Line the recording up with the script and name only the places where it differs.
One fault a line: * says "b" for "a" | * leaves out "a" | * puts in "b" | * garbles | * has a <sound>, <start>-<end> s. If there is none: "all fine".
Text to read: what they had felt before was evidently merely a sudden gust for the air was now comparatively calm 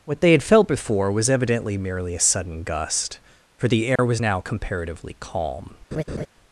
* has a dropout, 4.0-4.0 s
* has a laugh, 5.9-6.3 s